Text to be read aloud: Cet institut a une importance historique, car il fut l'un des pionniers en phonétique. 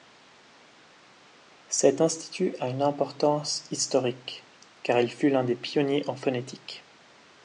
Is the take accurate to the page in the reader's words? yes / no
yes